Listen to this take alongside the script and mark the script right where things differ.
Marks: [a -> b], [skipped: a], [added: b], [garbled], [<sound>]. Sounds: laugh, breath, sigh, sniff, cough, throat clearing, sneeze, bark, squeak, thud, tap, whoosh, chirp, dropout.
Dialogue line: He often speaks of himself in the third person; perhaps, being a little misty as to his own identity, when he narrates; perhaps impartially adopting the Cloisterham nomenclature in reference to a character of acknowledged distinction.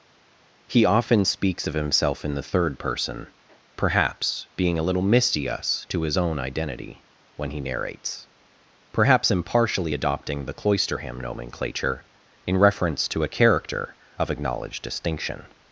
He often speaks of himself in the third person; perhaps, being a little misty [as -> us] to his own identity, when he narrates; perhaps impartially adopting the Cloisterham nomenclature in reference to a character of acknowledged distinction.